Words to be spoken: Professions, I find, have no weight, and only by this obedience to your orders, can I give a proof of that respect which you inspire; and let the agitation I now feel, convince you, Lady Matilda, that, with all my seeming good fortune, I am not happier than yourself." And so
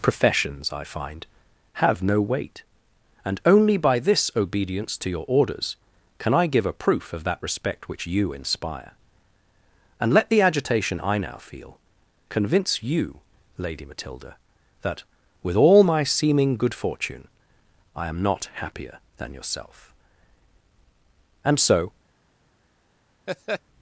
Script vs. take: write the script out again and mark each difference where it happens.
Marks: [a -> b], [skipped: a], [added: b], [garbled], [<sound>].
Professions, I find, have no weight, and only by this obedience to your orders, can I give a proof of that respect which you inspire; and let the agitation I now feel, convince you, Lady Matilda, that, with all my seeming good fortune, I am not happier than yourself." And so [laugh]